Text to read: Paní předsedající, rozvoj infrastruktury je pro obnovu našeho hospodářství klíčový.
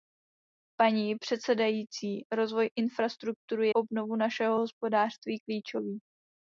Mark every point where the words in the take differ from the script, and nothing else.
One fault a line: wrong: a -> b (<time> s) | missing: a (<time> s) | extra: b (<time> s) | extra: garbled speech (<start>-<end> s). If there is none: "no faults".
missing: je pro (3.7 s)